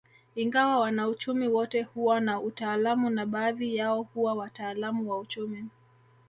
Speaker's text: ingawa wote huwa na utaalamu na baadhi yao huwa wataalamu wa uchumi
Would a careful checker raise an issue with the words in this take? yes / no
yes